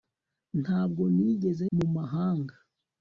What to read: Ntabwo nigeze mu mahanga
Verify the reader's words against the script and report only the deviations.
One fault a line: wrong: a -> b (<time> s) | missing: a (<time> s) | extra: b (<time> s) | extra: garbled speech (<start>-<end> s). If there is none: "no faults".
no faults